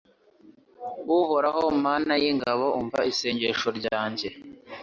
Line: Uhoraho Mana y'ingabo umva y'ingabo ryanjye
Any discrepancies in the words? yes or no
yes